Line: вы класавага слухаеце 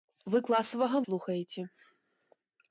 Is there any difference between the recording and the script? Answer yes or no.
no